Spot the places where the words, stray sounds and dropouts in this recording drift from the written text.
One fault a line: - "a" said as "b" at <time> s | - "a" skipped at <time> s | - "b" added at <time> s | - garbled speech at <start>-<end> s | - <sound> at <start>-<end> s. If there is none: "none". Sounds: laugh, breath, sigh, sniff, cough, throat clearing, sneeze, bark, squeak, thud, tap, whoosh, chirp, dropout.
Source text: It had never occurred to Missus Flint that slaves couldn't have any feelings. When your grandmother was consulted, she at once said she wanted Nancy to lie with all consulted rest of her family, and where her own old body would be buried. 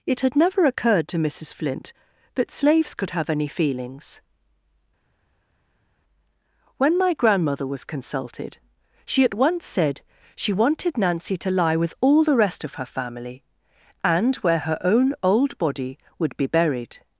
- "couldn't" said as "could" at 3.0 s
- "your" said as "my" at 7.0 s
- "consulted" said as "the" at 12.2 s